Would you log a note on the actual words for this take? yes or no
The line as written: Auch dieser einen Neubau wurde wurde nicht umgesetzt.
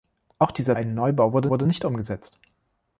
no